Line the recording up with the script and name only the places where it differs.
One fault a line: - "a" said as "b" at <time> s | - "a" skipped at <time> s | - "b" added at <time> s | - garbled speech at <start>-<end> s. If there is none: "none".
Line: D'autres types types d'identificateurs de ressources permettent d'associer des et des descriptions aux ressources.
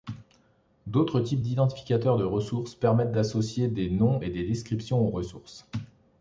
- "types" skipped at 1.4 s
- "noms" added at 3.9 s